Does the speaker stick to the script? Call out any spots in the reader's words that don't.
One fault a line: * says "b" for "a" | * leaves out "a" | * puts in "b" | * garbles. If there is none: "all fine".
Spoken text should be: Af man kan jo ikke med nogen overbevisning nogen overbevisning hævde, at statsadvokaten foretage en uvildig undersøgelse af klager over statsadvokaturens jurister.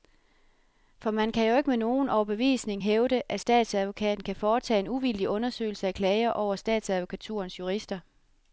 * says "For" for "Af"
* leaves out "nogen overbevisning"
* puts in "kan"